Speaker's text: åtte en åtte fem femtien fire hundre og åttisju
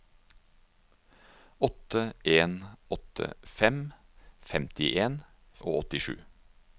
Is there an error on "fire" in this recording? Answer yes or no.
yes